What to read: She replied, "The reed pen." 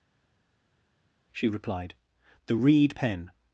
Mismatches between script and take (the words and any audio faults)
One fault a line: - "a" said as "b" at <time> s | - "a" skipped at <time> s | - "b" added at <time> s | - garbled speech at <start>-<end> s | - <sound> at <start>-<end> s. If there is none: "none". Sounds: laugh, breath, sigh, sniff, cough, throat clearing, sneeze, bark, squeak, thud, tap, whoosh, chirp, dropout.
none